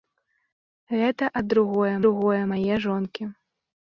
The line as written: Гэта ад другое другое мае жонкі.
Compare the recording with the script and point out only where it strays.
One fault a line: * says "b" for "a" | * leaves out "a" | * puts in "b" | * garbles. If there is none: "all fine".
all fine